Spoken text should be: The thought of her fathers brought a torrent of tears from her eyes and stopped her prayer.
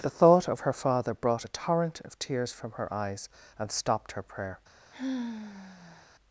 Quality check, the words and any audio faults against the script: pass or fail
fail